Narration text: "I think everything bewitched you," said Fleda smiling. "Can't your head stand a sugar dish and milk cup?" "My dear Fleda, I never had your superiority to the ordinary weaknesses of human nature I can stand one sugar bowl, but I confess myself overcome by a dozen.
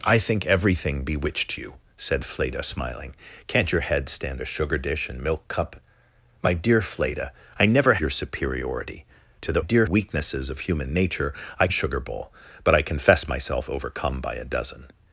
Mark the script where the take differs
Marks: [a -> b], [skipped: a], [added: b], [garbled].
"I think everything bewitched you," said Fleda smiling. "Can't your head stand a sugar dish and milk cup?" "My dear Fleda, I never [skipped: had] your superiority to the [ordinary -> dear] weaknesses of human nature I [skipped: can stand one] sugar bowl, but I confess myself overcome by a dozen.